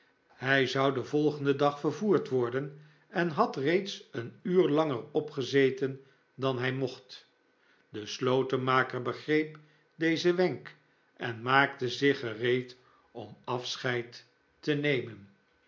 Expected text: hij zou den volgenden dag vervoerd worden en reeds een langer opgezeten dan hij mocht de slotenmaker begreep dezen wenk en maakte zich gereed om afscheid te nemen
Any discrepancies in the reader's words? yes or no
yes